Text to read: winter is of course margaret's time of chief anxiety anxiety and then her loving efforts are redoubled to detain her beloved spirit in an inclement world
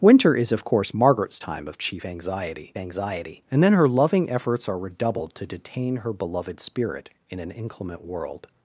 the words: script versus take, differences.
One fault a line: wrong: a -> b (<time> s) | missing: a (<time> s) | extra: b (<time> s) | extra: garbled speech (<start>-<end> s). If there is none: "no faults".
no faults